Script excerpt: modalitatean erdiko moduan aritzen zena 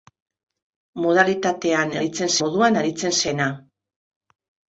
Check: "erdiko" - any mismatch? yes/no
yes